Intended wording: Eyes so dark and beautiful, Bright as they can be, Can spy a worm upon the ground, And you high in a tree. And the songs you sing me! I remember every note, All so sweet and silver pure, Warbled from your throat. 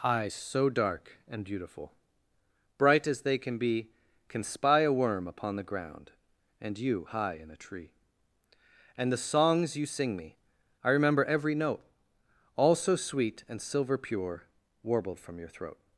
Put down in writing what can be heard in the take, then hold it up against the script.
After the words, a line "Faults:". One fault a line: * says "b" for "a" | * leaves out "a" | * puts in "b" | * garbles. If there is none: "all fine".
Eyes so dark and beautiful, Bright as they can be, Can spy a worm upon the ground, And you high in a tree. And the songs you sing me! I remember every note, All so sweet and silver pure, Warbled from your throat.
Faults:
all fine